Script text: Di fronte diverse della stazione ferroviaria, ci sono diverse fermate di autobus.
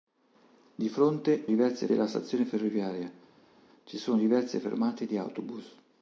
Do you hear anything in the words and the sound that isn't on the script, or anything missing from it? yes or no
no